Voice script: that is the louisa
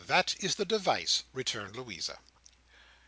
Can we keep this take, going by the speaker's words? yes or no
no